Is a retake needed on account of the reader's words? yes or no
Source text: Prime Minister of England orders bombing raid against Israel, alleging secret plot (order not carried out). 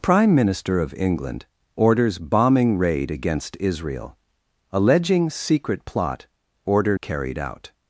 yes